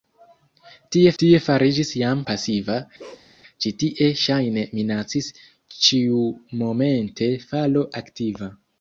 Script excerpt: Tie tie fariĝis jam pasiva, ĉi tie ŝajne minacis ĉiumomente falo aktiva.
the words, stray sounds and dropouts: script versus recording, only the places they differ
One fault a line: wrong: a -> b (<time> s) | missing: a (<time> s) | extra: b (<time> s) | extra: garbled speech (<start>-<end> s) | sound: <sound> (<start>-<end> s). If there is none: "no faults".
sound: bark (3.0-3.3 s)